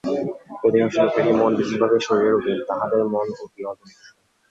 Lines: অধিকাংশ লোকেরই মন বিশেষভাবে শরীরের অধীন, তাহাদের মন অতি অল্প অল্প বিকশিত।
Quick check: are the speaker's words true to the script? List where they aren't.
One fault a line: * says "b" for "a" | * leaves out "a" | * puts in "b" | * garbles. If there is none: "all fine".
* leaves out "অল্প"